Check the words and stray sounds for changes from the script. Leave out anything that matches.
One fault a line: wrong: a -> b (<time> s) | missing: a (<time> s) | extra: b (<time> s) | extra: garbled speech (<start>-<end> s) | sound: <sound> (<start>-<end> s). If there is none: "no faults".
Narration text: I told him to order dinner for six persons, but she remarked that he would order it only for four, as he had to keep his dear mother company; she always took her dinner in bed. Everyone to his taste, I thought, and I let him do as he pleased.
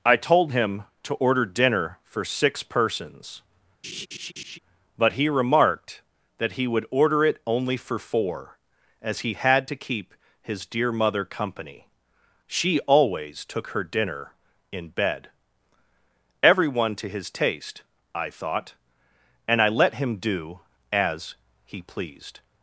sound: laugh (3.8-4.6 s)
wrong: she -> he (5.1 s)